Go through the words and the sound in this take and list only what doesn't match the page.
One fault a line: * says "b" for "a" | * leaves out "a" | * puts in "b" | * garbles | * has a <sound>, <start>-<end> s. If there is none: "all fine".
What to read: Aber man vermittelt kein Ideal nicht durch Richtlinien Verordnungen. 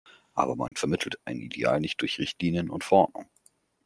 * has a dropout, 0.7-0.7 s
* says "ein" for "kein"
* puts in "und"